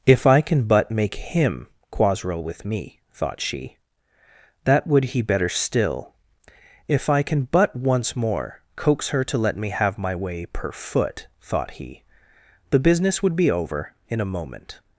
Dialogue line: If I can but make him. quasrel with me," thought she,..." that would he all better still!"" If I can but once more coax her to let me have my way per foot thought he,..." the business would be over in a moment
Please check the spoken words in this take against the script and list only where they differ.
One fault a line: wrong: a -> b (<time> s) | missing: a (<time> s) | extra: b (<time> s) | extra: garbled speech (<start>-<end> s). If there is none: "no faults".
missing: all (5.2 s)